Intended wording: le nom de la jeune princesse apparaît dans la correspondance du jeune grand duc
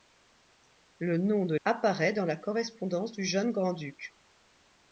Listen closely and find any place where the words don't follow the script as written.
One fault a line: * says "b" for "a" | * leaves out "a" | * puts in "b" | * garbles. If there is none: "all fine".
* leaves out "la jeune princesse"